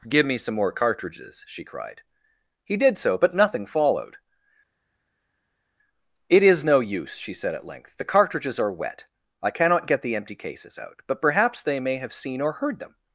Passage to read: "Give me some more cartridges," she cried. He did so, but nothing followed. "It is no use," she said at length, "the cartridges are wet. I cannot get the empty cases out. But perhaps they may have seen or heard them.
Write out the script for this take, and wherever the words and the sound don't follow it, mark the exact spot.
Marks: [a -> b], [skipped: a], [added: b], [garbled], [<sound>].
"Give me some more cartridges," she cried. He did so, but nothing followed. "It is no use," she said at length, "the cartridges are wet. I cannot get the empty cases out. But perhaps they may have seen or heard them.